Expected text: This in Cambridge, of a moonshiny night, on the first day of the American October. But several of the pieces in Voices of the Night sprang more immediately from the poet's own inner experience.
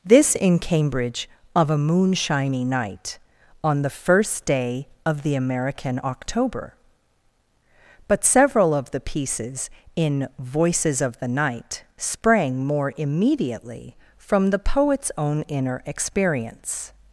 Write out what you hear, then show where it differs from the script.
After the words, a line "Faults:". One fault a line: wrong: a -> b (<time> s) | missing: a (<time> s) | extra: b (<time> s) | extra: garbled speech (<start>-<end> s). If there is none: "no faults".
This in Cambridge, of a moonshiny night, on the first day of the American October. But several of the pieces in Voices of the Night sprang more immediately from the poet's own inner experience.
Faults:
no faults